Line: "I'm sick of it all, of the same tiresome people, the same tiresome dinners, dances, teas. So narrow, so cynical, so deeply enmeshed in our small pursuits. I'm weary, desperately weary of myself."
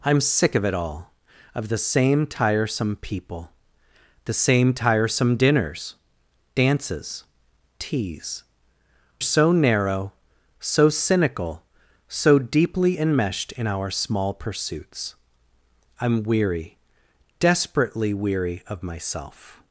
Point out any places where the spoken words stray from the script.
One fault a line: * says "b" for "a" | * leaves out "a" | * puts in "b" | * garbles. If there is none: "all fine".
all fine